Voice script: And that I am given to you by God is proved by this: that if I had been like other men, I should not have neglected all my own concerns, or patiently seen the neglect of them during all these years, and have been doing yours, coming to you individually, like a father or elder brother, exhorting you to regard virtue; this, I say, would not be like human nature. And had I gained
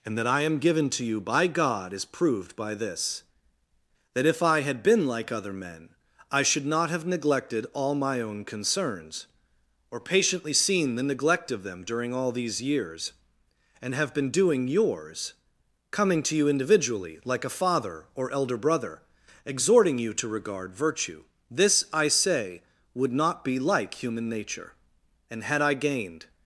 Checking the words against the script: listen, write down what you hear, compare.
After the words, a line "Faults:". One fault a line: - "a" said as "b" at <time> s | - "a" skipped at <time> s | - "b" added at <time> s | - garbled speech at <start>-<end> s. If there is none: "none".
And that I am given to you by God is proved by this: that if I had been like other men, I should not have neglected all my own concerns, or patiently seen the neglect of them during all these years, and have been doing yours, coming to you individually, like a father or elder brother, exhorting you to regard virtue; this, I say, would not be like human nature. And had I gained
Faults:
none